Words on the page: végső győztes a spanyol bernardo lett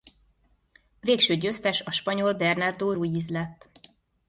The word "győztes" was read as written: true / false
true